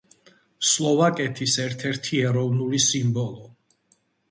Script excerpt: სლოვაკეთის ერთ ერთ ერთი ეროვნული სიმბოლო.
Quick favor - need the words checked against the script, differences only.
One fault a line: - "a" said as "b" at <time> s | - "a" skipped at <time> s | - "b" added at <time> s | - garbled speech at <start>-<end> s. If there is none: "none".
- "ერთ" skipped at 1.9 s